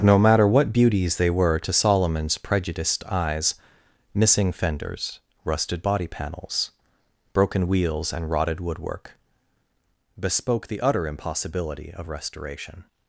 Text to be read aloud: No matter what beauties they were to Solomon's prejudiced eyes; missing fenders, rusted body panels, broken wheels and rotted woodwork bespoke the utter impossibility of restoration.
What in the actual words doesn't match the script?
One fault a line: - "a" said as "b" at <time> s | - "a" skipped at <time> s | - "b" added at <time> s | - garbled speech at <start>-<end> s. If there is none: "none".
none